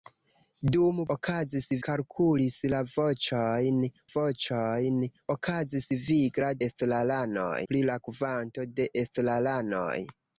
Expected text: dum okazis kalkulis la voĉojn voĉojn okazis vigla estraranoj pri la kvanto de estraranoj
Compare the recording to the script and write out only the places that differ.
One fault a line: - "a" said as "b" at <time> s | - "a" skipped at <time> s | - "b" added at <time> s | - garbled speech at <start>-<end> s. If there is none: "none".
none